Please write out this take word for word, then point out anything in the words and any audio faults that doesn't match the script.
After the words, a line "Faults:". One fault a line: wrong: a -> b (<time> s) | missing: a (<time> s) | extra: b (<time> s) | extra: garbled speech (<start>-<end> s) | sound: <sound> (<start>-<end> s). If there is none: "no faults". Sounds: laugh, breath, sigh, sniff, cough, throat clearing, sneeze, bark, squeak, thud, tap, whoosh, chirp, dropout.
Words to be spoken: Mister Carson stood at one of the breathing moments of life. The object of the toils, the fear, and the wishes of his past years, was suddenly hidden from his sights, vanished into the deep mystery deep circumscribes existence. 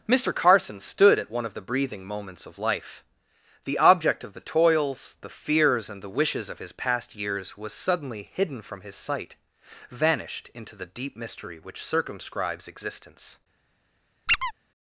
Mister Carson stood at one of the breathing moments of life. The object of the toils, the fears, and the wishes of his past years, was suddenly hidden from his sight, vanished into the deep mystery which circumscribes existence.
Faults:
wrong: fear -> fears (5.3 s)
wrong: sights -> sight (9.0 s)
wrong: deep -> which (11.6 s)
sound: squeak (14.3-14.5 s)